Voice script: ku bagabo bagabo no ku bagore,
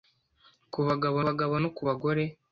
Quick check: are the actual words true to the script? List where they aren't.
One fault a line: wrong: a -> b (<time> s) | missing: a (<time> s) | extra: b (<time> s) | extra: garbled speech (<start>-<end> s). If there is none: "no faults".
no faults